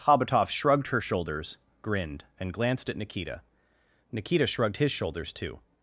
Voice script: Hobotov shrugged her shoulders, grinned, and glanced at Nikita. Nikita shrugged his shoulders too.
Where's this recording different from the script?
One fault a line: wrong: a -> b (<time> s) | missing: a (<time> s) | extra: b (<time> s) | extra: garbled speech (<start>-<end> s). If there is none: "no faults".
no faults